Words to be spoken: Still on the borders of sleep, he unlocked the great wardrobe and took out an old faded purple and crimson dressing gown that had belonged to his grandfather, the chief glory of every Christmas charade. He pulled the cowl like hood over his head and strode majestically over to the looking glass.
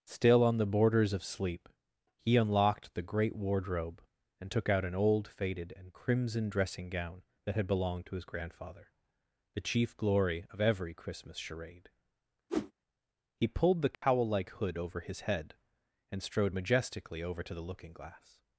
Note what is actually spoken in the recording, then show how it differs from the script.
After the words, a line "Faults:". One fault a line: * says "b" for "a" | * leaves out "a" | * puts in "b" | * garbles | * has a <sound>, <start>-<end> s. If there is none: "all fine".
Still on the borders of sleep, he unlocked the great wardrobe and took out an old faded and crimson dressing gown that had belonged to his grandfather, the chief glory of every Christmas charade. He pulled the cowl like hood over his head and strode majestically over to the looking glass.
Faults:
* leaves out "purple"
* has a whoosh, 12.5-12.7 s
* has a dropout, 13.9-14.0 s